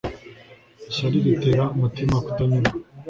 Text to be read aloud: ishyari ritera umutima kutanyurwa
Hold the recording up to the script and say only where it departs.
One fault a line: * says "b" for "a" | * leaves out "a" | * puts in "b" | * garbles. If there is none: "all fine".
all fine